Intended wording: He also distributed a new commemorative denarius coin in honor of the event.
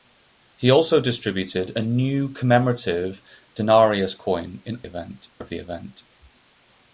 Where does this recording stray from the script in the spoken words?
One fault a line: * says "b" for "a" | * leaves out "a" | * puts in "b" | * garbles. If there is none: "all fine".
* says "event" for "honor"